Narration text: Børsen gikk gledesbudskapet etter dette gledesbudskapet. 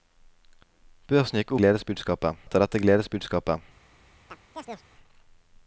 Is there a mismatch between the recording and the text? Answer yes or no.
no